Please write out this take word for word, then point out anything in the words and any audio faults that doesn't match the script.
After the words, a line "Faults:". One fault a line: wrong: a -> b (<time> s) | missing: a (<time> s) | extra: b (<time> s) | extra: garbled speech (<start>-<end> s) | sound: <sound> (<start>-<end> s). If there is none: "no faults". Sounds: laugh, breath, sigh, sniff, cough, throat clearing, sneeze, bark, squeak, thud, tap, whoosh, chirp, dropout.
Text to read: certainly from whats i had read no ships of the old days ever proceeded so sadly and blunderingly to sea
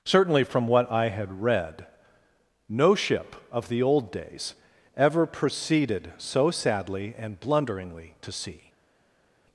certainly from what i had read no ship of the old days ever proceeded so sadly and blunderingly to sea
Faults:
wrong: whats -> what (0.7 s)
wrong: ships -> ship (3.0 s)